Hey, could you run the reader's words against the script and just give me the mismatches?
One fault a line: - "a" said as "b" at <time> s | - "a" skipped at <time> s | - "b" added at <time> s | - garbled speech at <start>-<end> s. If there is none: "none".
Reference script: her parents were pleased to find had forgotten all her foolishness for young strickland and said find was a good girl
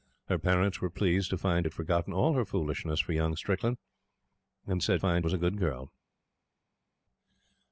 none